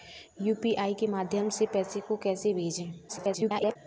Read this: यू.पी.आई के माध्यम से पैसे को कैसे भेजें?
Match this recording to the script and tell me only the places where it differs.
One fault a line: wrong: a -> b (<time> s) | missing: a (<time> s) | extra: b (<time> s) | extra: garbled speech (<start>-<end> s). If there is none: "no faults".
extra: garbled speech (3.1-3.8 s)